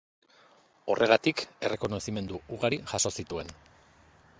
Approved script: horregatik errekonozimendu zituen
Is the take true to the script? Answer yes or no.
no